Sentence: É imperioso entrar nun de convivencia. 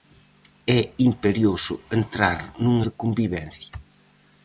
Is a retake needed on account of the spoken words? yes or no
no